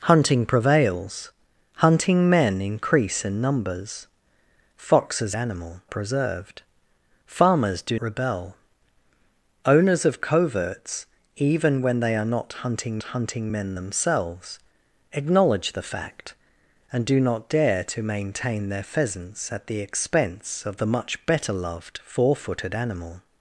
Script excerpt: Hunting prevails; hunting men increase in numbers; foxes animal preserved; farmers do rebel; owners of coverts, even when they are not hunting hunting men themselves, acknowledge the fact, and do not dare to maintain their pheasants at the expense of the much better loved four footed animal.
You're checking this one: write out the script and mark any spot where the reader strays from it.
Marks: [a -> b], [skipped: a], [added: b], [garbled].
Hunting prevails; hunting men increase in numbers; foxes animal preserved; farmers do rebel; owners of coverts, even when they are not hunting hunting men themselves, acknowledge the fact, and do not dare to maintain their pheasants at the expense of the much better loved four footed animal.